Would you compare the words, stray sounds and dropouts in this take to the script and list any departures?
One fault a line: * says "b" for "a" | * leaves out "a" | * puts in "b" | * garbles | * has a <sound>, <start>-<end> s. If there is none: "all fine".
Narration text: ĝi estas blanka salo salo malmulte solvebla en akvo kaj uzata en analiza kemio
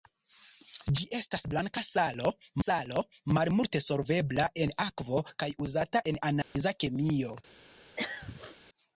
* has a dropout, 6.4-6.5 s
* has a throat clearing, 8.0-8.6 s